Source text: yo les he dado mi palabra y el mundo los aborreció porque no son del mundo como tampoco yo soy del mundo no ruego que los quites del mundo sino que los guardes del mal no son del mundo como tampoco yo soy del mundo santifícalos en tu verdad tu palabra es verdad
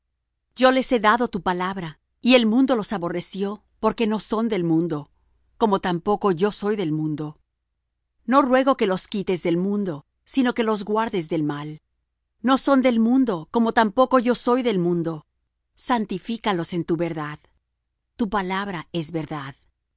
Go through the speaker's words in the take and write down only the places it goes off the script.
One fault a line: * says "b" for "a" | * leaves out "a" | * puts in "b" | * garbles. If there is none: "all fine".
* says "tu" for "mi"